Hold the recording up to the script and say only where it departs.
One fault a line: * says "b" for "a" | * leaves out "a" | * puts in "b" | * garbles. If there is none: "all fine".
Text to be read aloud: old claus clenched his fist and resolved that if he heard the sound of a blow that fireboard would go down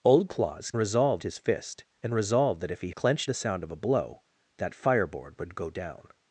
* says "resolved" for "clenched"
* says "clenched" for "heard"